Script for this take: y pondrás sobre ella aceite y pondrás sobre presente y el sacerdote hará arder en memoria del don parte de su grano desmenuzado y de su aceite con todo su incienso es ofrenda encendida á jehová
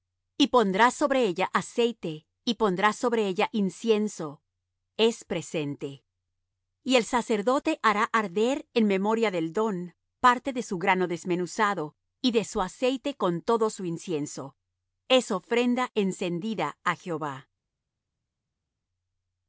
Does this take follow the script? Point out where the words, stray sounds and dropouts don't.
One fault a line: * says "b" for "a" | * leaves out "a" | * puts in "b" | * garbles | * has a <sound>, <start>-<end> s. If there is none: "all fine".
* puts in "ella incienso es"